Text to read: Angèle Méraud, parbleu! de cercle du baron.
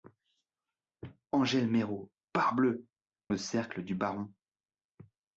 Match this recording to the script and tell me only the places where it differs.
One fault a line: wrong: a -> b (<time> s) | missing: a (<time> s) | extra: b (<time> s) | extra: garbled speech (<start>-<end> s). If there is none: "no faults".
no faults